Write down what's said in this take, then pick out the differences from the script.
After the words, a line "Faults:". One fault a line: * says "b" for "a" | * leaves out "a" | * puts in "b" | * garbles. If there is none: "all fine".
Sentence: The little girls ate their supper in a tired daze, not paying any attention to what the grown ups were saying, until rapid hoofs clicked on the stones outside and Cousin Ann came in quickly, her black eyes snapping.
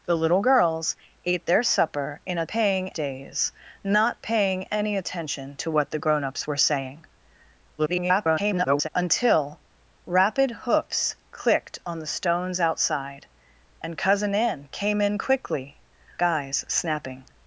The little girls ate their supper in a paying daze, not paying any attention to what the grown ups were saying, [garbled] until rapid hoofs clicked on the stones outside and Cousin Ann came in quickly, eyes snapping.
Faults:
* says "paying" for "tired"
* garbles
* leaves out "her black"